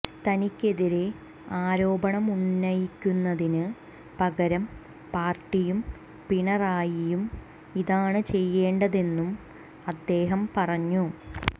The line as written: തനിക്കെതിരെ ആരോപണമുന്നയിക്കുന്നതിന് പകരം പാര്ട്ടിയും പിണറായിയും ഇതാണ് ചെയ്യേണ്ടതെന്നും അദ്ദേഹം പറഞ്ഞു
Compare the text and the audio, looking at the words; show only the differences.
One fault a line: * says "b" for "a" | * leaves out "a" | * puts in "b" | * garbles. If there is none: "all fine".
all fine